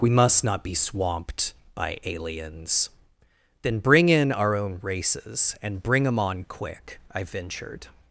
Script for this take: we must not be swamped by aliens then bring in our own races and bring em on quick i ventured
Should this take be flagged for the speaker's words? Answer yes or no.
no